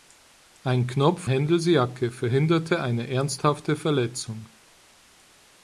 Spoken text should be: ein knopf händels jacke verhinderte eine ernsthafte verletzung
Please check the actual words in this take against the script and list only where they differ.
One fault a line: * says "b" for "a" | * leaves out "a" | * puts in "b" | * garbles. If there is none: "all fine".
all fine